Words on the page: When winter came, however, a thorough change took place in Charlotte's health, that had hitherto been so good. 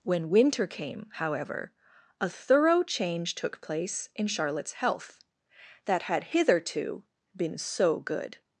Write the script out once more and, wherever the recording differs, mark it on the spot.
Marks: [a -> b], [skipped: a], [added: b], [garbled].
When winter came, however, a thorough change took place in Charlotte's health, that had hitherto been so good.